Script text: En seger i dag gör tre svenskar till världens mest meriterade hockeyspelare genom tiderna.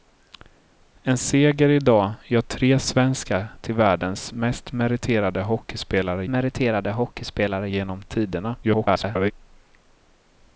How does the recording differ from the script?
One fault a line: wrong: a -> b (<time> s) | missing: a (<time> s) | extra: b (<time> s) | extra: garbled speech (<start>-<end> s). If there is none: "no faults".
extra: meriterade hockeyspelare (6.3 s)
extra: garbled speech (8.6-9.3 s)